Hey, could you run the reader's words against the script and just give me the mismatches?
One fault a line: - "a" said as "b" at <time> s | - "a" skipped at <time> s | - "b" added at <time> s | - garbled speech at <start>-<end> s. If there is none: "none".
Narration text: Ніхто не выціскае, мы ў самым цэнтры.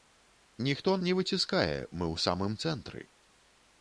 none